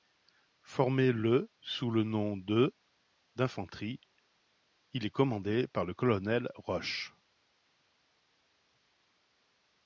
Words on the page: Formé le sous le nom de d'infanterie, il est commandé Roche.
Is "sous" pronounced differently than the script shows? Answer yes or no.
no